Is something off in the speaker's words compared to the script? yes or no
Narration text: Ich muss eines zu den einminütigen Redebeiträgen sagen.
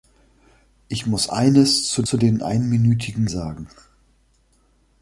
yes